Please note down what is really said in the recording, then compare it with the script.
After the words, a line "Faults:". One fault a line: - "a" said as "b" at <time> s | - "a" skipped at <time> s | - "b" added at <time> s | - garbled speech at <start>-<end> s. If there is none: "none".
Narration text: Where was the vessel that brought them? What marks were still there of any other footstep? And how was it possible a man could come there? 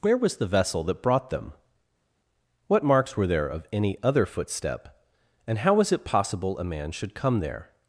Where was the vessel that brought them? What marks were there of any other footstep? And how was it possible a man should come there?
Faults:
- "still" skipped at 3.3 s
- "could" said as "should" at 6.9 s